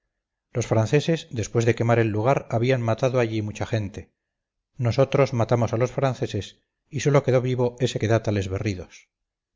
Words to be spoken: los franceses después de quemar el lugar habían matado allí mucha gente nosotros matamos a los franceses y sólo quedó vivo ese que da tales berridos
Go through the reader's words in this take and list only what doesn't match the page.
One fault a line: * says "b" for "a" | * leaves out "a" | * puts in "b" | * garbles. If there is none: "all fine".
all fine